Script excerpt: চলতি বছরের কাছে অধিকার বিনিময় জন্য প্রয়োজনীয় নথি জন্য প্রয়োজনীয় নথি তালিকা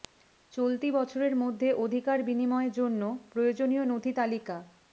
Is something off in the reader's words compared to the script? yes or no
yes